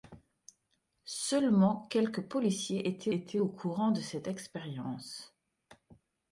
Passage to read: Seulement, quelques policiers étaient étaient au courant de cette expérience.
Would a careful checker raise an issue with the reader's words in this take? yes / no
no